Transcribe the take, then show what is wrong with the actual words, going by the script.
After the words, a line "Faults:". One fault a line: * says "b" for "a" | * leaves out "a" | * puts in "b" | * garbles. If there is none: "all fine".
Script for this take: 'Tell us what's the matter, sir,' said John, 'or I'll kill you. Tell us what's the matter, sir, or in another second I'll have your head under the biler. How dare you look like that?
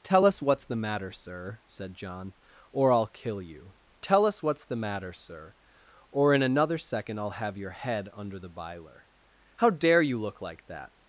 'Tell us what's the matter, sir,' said John, 'or I'll kill you. Tell us what's the matter, sir, or in another second I'll have your head under the biler. How dare you look like that?
Faults:
all fine